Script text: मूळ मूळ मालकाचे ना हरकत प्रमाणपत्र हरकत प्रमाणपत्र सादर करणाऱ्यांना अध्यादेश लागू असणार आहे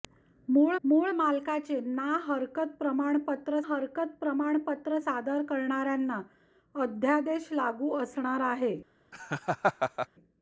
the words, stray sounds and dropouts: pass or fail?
fail